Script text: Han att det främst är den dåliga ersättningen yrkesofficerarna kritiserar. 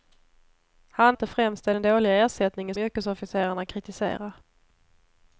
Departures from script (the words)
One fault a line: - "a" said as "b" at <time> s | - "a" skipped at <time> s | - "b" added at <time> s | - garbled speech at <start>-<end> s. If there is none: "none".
none